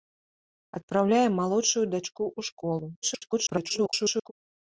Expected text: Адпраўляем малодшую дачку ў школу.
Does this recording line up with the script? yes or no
no